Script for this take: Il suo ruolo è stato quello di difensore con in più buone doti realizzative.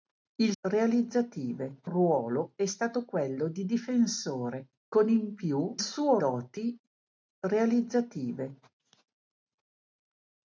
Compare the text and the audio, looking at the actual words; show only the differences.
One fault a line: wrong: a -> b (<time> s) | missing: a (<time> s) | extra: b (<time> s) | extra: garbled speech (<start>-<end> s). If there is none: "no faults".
wrong: suo -> realizzative (0.6 s)
wrong: buone -> suo (5.8 s)